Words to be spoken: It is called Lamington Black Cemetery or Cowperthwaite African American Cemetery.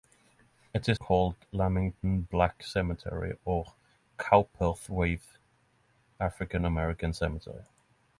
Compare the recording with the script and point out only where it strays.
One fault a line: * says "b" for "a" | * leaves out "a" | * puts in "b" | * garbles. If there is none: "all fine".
all fine